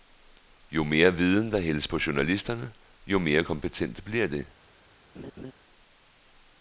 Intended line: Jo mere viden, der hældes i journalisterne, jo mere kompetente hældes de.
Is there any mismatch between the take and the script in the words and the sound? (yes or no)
yes